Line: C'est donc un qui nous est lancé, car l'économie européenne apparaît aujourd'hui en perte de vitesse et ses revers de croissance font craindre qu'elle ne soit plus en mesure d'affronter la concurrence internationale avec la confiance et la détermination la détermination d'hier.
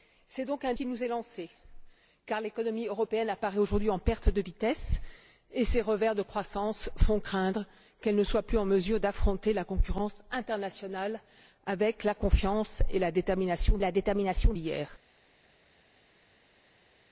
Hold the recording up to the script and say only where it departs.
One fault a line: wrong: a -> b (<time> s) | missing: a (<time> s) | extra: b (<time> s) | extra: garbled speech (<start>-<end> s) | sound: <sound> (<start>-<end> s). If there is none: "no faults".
no faults